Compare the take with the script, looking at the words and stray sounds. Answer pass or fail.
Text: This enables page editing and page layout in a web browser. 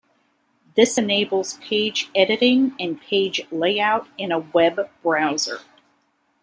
pass